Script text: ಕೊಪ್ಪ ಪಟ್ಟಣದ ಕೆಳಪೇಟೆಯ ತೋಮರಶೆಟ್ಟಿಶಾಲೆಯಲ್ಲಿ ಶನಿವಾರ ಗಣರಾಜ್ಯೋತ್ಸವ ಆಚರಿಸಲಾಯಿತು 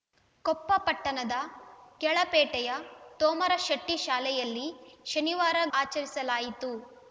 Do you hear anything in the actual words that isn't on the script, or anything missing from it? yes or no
yes